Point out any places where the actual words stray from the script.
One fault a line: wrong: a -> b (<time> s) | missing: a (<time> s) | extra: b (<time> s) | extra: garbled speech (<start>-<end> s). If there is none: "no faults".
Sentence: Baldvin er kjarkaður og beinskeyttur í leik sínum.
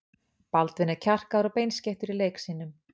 no faults